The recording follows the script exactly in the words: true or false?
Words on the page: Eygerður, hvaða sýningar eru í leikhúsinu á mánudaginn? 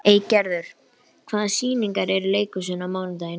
true